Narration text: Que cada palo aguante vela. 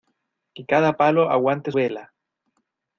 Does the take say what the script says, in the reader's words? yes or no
yes